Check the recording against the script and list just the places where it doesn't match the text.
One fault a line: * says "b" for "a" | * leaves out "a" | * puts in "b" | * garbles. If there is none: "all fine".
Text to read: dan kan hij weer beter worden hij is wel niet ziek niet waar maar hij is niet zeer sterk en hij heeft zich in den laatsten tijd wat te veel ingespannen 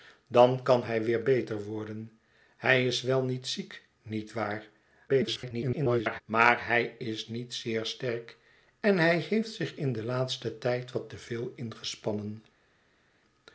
* garbles